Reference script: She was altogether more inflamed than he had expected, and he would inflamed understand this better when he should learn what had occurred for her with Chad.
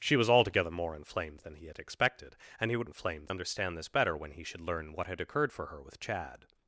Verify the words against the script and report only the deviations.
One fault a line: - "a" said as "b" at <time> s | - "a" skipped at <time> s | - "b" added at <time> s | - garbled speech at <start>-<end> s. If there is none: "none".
none